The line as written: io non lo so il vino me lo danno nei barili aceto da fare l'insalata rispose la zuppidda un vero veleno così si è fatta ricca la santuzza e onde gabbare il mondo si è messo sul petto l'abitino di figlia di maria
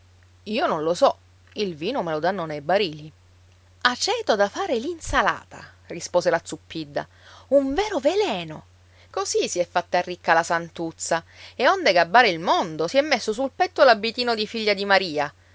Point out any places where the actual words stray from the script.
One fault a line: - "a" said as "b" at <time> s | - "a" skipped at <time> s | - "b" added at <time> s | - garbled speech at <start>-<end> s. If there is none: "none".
none